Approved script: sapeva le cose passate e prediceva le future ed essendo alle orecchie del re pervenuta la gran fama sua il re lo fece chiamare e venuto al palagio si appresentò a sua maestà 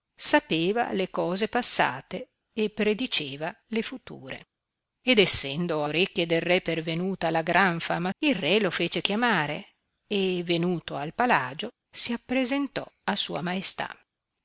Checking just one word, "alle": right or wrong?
wrong